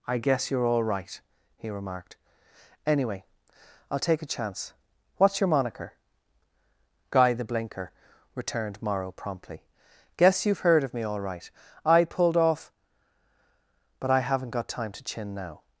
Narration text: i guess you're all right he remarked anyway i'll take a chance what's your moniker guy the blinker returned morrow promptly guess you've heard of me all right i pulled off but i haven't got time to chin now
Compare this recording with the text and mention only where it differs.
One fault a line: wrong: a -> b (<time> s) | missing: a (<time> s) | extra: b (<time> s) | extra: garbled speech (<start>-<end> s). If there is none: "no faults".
no faults